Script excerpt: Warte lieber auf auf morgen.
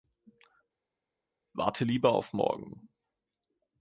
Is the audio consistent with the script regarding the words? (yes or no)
no